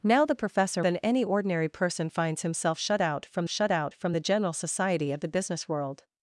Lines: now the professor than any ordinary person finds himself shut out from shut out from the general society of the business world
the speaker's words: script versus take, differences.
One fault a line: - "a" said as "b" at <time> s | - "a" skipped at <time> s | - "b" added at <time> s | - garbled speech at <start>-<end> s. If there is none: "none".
none